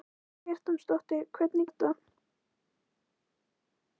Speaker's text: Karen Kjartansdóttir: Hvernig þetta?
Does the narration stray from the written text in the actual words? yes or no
no